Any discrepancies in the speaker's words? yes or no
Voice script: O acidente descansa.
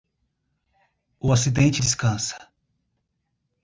no